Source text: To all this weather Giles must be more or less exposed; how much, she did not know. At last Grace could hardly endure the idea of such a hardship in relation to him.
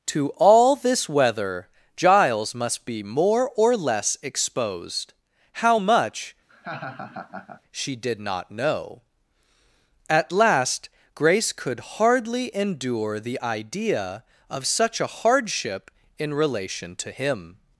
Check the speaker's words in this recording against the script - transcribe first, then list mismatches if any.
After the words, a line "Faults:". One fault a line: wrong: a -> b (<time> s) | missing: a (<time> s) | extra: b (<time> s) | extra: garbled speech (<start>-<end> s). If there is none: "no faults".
To all this weather Giles must be more or less exposed; how much, she did not know. At last Grace could hardly endure the idea of such a hardship in relation to him.
Faults:
no faults